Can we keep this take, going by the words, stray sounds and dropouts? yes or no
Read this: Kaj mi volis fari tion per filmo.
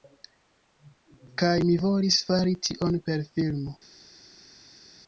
yes